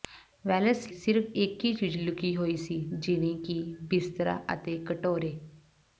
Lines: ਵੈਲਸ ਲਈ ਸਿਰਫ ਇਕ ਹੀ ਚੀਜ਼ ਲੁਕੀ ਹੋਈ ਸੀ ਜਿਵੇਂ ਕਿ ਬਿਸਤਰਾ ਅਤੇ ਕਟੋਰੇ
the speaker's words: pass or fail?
fail